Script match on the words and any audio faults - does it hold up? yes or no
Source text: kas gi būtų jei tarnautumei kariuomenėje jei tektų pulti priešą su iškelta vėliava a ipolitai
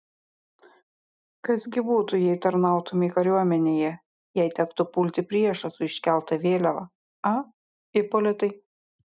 yes